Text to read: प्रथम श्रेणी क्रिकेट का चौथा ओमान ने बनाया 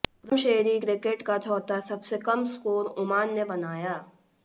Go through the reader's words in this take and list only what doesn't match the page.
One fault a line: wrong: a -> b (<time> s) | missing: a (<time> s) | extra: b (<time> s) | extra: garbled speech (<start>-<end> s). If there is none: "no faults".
extra: सबसे कम स्कोर (1.9 s)